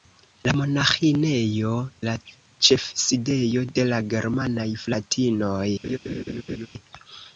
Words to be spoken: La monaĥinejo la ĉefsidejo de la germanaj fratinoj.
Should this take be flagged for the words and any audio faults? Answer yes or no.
yes